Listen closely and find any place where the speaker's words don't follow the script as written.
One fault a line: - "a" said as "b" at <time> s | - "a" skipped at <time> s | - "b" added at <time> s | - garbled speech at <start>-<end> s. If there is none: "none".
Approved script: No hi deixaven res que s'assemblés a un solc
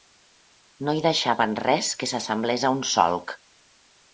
none